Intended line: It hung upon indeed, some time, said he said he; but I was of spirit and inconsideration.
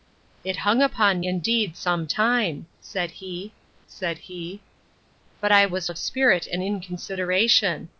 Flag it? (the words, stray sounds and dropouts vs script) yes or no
no